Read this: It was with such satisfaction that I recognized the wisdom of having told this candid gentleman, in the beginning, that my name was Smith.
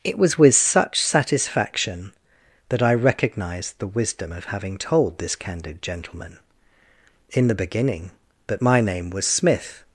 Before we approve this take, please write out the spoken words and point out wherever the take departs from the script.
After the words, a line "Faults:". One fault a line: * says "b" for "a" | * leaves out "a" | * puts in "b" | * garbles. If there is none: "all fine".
It was with such satisfaction that I recognized the wisdom of having told this candid gentleman, in the beginning, that my name was Smith.
Faults:
all fine